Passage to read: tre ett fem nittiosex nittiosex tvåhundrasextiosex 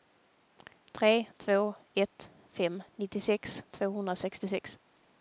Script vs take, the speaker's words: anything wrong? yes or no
yes